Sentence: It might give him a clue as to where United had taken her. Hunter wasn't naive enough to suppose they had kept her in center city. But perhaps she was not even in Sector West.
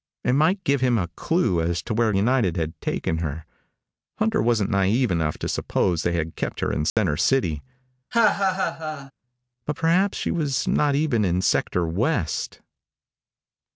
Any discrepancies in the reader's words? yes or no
no